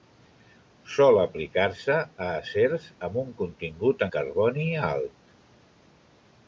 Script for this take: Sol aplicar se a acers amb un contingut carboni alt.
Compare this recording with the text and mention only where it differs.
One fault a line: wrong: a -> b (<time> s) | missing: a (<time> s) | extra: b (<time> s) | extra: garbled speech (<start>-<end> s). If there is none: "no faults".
no faults